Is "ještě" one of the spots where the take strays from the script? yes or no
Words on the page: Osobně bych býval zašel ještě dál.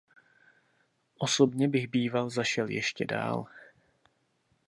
no